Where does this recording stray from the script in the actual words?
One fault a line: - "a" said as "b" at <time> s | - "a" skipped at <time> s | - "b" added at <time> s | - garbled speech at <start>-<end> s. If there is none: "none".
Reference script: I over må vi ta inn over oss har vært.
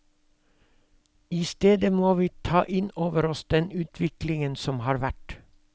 - "over" said as "stedet" at 1.5 s
- "den utviklingen som" added at 3.5 s